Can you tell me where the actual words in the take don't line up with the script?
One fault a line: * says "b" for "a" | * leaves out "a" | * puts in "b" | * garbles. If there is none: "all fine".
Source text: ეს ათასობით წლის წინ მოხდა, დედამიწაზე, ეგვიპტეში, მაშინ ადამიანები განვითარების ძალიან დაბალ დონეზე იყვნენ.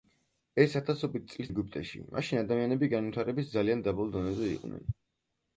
* leaves out "წინ მოხდა დედამიწაზე"